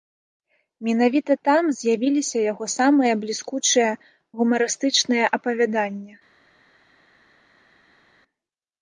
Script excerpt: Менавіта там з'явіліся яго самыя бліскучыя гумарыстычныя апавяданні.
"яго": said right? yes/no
yes